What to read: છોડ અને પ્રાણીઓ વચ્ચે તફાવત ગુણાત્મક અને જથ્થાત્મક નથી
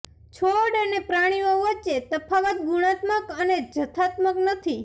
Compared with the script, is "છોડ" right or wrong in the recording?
right